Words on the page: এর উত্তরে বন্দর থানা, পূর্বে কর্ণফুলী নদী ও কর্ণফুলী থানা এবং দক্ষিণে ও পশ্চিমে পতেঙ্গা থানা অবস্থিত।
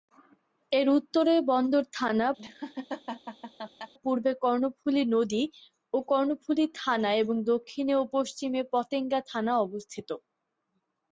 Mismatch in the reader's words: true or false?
false